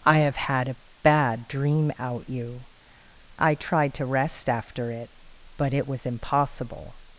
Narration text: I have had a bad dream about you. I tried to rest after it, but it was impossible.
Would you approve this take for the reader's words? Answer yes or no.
no